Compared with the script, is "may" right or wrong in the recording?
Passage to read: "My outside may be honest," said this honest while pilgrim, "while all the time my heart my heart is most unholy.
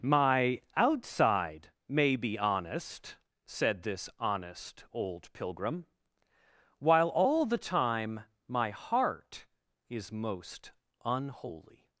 right